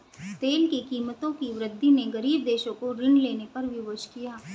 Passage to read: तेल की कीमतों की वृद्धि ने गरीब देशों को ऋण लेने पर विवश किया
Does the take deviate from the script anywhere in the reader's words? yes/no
no